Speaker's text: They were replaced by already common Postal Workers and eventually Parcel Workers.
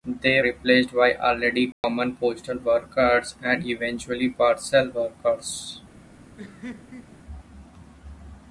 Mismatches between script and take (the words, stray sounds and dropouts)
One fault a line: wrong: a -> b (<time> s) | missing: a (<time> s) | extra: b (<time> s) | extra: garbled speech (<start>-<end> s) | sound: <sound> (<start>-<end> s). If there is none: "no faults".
missing: were (0.4 s)
sound: dropout (1.7-1.8 s)
sound: laugh (6.4-7.2 s)